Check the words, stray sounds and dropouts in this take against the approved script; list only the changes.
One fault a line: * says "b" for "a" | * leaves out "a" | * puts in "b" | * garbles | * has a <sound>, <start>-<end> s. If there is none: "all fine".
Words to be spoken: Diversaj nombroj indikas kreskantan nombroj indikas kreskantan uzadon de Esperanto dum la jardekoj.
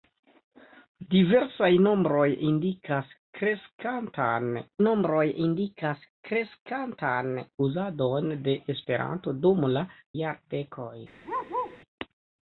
* has a bark, 11.2-11.8 s